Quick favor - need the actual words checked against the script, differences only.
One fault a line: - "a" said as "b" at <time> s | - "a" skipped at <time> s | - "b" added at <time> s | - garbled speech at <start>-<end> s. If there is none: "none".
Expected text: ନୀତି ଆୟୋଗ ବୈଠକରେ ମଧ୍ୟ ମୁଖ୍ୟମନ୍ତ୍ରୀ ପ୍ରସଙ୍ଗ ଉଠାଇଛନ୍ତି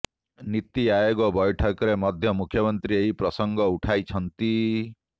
- "ଏହି" added at 3.0 s